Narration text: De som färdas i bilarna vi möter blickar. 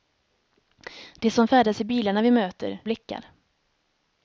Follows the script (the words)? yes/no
yes